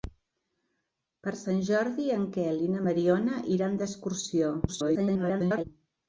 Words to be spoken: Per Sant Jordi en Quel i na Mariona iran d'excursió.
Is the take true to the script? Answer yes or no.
no